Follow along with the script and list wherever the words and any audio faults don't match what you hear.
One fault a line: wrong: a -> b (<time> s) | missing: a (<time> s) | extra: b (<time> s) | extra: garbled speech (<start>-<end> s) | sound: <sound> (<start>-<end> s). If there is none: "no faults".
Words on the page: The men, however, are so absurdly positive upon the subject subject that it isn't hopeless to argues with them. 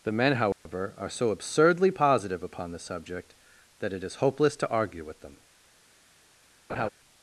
sound: dropout (0.5-0.7 s)
missing: subject (3.4 s)
wrong: isn't -> is (4.0 s)
wrong: argues -> argue (4.7 s)
sound: laugh (6.7-6.9 s)